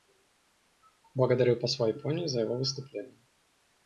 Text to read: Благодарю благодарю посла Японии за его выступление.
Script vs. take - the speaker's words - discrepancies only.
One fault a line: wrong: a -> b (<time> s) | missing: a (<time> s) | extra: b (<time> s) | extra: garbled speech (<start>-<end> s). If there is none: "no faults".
missing: благодарю (1.6 s)